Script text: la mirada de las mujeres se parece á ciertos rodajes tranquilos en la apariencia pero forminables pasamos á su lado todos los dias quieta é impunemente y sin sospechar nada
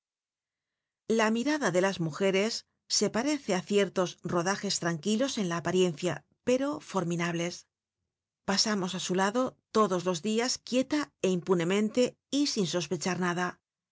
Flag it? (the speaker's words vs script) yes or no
no